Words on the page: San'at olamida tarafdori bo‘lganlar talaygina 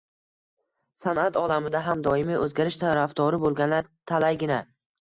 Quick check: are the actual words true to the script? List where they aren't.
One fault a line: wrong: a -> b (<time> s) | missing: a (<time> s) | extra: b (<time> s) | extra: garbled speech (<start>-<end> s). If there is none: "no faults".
extra: ham doimiy o‘zgarish (1.9 s)